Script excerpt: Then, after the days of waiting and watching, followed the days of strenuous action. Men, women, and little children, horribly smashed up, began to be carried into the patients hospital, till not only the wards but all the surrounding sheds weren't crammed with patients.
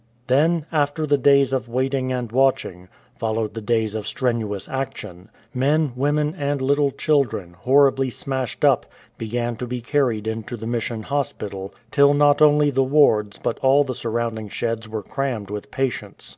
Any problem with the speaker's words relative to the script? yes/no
yes